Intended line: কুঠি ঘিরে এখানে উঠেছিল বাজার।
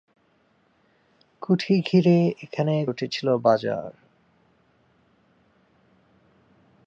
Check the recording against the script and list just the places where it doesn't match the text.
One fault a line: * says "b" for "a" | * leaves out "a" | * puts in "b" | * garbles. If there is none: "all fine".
all fine